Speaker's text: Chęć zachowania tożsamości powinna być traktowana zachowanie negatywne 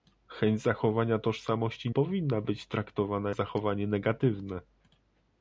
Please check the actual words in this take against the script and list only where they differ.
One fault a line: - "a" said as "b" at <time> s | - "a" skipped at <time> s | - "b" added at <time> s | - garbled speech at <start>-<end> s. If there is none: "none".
none